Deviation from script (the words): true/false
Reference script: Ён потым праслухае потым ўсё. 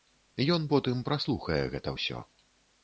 true